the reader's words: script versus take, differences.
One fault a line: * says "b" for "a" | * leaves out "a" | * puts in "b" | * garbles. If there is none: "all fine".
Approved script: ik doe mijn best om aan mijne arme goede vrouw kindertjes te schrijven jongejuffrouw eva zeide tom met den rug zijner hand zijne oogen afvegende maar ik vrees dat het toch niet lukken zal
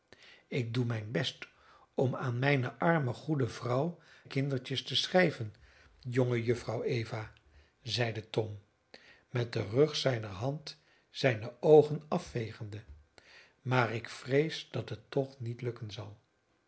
all fine